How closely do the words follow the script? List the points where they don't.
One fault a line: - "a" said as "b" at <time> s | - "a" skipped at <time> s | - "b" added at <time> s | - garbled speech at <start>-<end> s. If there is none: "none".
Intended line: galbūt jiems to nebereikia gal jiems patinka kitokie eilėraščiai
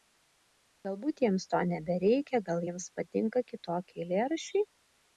none